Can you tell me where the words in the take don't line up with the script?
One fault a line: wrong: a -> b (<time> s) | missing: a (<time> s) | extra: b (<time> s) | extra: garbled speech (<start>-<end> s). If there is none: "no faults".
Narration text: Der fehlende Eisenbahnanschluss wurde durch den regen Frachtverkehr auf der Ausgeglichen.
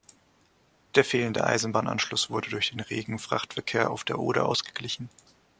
extra: Oder (4.2 s)